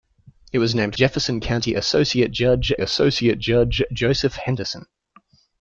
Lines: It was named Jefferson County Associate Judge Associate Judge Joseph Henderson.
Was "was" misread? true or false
false